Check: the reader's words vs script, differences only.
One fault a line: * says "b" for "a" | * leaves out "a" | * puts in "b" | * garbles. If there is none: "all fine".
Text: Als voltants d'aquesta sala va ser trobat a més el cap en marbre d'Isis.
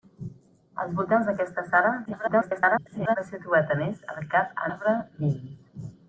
* garbles
* leaves out "en"